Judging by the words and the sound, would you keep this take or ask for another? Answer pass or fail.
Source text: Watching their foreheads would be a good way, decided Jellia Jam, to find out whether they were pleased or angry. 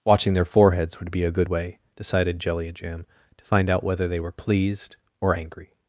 pass